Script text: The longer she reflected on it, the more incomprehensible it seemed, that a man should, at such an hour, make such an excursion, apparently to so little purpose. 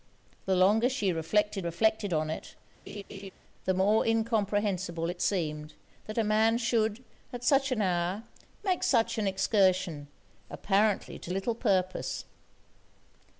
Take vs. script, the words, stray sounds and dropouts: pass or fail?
fail